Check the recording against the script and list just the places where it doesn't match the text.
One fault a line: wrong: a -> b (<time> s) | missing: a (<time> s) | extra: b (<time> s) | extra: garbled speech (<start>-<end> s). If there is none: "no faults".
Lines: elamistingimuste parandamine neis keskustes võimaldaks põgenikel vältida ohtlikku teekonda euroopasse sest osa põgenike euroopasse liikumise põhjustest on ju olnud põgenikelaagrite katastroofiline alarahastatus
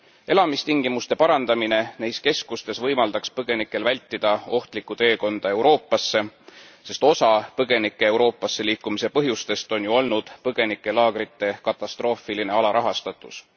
no faults